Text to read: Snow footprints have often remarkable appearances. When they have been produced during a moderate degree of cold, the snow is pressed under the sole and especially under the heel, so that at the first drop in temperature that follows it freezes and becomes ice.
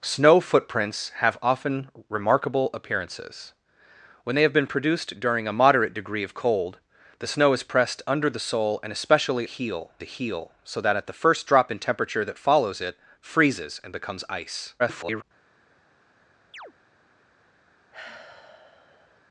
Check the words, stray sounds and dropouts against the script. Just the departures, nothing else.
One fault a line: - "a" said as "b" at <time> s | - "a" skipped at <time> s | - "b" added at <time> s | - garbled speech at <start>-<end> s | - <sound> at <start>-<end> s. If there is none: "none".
- "under" said as "heel" at 9.5 s
- garbled speech at 14.8-15.2 s
- chirp at 16.5-16.7 s
- sigh at 17.9-19.2 s